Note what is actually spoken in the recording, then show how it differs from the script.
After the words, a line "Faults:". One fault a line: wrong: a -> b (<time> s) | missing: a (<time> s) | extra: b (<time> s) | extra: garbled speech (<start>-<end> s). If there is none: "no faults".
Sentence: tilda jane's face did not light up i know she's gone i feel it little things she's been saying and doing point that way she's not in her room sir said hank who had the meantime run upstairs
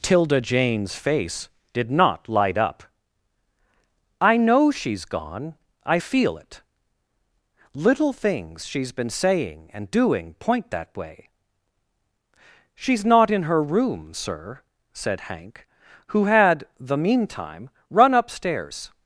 tilda jane's face did not light up i know she's gone i feel it little things she's been saying and doing point that way she's not in her room sir said hank who had the meantime run upstairs
Faults:
no faults